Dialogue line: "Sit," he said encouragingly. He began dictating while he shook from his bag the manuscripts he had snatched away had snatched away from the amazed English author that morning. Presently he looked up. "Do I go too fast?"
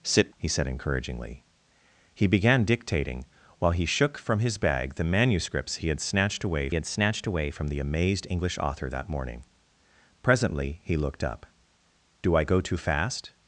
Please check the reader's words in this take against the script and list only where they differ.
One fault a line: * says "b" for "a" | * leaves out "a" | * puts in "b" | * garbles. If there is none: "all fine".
all fine